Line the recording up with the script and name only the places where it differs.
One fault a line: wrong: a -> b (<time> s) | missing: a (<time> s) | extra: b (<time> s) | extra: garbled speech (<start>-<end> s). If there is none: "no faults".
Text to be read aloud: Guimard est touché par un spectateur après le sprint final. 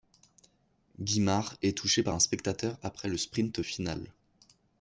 no faults